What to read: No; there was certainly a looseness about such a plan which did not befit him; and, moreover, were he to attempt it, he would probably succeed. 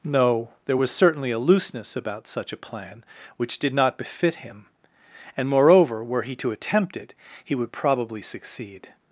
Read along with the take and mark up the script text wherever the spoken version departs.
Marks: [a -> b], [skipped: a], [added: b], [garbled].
No; there was certainly a looseness about such a plan which did not befit him; and, moreover, were he to attempt it, he would probably succeed.